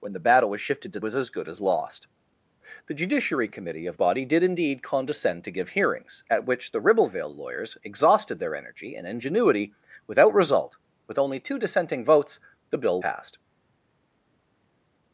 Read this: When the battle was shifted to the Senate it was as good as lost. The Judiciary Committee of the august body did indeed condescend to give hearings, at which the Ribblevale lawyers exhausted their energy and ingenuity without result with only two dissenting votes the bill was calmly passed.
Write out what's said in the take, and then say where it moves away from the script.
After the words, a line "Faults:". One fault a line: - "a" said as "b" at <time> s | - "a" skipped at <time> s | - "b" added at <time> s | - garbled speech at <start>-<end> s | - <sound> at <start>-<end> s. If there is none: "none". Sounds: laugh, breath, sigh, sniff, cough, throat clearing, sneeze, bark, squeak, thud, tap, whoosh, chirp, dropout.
When the battle was shifted to was as good as lost. The Judiciary Committee of body did indeed condescend to give hearings, at which the Ribblevale lawyers exhausted their energy and ingenuity without result with only two dissenting votes the bill passed.
Faults:
- "the Senate it" skipped at 1.0 s
- "the august" skipped at 4.0 s
- "was calmly" skipped at 13.0 s